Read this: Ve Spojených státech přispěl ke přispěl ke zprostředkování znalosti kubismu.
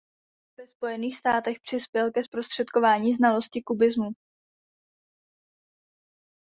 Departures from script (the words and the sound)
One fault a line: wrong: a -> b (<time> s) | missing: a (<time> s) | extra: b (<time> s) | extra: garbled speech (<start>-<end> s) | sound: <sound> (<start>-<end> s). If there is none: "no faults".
missing: přispěl ke (2.2 s)